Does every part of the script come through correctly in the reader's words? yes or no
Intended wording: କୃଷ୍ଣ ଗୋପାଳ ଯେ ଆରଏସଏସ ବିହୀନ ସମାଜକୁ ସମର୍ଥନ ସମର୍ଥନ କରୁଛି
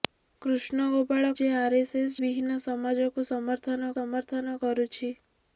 yes